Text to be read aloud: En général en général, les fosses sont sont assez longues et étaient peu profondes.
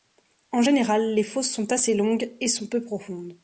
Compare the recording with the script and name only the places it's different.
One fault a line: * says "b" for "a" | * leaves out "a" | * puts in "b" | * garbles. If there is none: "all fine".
* leaves out "en général"
* leaves out "sont"
* says "sont" for "étaient"